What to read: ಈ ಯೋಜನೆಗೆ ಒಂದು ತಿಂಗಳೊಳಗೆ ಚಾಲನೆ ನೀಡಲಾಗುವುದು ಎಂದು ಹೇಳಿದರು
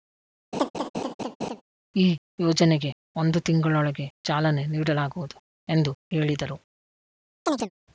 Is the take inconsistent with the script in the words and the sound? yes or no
yes